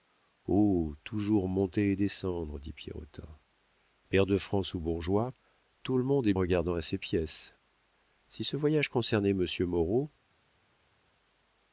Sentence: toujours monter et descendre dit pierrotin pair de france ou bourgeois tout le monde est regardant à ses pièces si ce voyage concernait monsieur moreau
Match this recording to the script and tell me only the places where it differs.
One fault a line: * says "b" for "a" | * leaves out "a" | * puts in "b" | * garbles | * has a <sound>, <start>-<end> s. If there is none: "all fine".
all fine